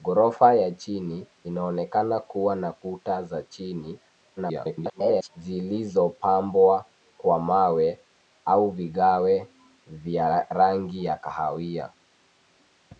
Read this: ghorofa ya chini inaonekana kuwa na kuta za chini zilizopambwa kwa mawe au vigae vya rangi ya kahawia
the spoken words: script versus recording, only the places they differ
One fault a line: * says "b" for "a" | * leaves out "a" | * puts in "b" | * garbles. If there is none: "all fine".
* garbles